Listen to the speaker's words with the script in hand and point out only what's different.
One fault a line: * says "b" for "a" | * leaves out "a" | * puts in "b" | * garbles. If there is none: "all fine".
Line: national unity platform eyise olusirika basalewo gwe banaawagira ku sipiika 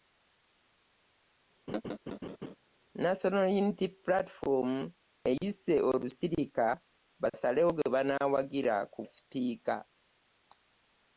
all fine